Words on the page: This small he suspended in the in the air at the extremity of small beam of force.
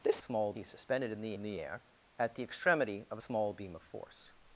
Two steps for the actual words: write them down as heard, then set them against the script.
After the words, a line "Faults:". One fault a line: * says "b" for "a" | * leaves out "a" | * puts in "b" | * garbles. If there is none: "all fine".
This small he suspended in the in the air at the extremity of small beam of force.
Faults:
all fine